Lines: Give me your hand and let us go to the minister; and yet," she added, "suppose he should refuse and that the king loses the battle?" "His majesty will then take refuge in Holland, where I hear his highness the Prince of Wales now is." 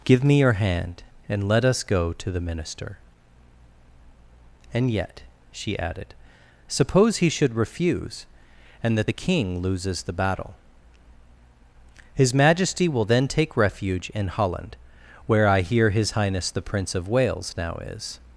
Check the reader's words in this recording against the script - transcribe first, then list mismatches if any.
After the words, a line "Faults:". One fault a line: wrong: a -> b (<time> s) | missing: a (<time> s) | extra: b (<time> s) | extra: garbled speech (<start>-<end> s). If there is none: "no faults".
Give me your hand and let us go to the minister; and yet," she added, "suppose he should refuse and that the king loses the battle?" "His majesty will then take refuge in Holland, where I hear his highness the Prince of Wales now is."
Faults:
no faults